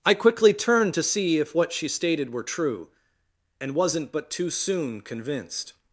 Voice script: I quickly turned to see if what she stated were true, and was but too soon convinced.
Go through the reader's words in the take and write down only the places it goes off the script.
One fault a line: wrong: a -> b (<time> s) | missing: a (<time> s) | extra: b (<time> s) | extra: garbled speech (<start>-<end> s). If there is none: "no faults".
wrong: was -> wasn't (3.7 s)